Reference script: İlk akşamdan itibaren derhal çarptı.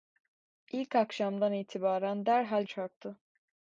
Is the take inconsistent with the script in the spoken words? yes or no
no